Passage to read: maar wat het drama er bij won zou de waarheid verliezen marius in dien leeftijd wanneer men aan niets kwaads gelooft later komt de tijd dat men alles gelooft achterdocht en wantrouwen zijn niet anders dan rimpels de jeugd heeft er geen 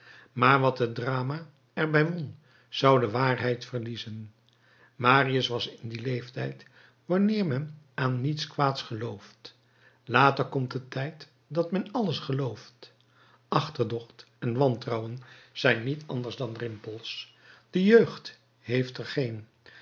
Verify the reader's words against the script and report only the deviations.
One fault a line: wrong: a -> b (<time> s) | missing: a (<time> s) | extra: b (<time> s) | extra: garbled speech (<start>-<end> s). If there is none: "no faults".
extra: was (5.5 s)